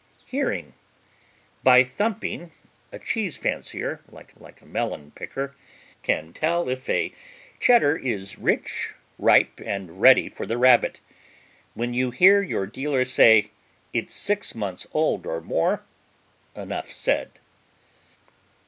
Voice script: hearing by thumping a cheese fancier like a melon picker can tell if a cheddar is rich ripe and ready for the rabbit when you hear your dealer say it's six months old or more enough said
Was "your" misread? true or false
false